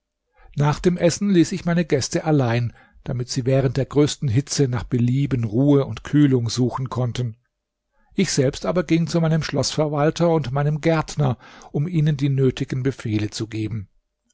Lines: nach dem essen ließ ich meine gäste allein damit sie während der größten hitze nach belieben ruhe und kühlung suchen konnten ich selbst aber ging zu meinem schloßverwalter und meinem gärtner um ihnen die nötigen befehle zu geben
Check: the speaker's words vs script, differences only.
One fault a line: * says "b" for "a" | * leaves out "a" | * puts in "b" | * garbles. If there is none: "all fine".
all fine